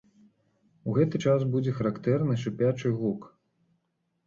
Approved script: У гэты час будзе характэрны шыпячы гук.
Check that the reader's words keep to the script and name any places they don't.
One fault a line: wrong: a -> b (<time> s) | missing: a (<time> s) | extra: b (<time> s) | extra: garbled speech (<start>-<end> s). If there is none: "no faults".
no faults